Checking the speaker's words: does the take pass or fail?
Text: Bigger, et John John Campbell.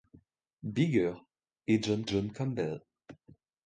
pass